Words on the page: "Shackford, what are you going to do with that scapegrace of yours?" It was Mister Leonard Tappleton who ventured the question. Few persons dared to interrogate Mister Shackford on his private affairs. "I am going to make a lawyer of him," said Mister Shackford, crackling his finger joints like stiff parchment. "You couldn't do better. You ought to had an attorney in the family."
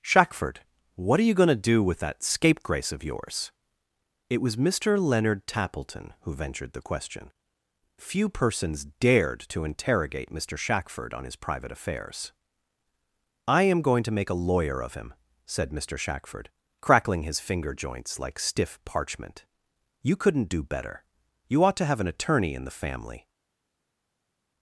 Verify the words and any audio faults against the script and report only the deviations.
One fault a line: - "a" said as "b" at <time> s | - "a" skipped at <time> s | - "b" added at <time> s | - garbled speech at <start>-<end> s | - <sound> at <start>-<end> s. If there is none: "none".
- "had" said as "have" at 21.9 s